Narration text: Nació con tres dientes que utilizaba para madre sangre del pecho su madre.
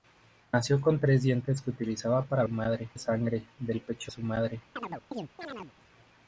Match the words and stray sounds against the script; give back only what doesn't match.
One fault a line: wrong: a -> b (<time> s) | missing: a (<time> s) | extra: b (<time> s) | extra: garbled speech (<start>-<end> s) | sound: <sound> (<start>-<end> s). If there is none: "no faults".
sound: chirp (4.8-5.7 s)